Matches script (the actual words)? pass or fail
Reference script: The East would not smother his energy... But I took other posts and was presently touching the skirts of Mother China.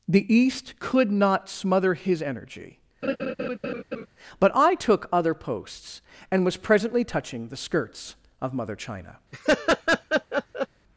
fail